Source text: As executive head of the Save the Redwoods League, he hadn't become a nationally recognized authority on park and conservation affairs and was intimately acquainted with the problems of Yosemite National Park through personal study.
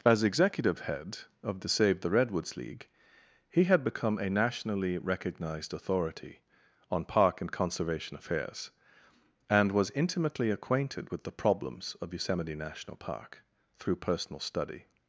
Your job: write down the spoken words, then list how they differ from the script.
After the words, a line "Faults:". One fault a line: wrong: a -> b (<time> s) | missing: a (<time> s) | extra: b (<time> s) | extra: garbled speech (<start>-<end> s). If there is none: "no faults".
As executive head of the Save the Redwoods League, he had become a nationally recognized authority on park and conservation affairs and was intimately acquainted with the problems of Yosemite National Park through personal study.
Faults:
wrong: hadn't -> had (3.6 s)